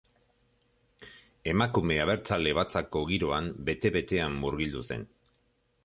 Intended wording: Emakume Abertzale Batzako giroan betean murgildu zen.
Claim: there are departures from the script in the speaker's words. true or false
true